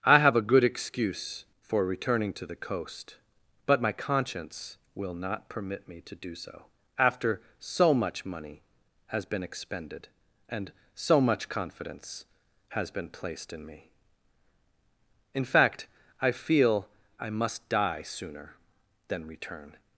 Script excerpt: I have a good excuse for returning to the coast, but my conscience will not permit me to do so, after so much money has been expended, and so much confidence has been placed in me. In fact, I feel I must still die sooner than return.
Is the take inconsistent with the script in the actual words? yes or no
yes